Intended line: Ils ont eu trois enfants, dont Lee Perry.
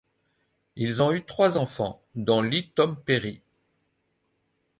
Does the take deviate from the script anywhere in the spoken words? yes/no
yes